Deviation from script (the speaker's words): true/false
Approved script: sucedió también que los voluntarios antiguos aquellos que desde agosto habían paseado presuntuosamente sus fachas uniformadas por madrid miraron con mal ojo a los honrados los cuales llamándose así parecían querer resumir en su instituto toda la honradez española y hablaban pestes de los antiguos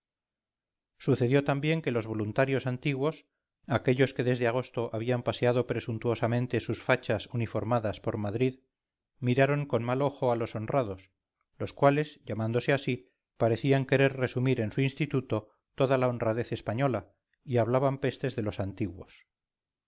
false